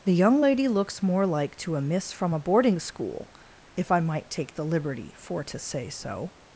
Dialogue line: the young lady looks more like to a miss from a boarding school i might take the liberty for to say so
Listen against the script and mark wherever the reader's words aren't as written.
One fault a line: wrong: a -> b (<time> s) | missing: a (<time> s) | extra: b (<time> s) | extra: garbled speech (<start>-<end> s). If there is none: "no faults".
extra: if (3.7 s)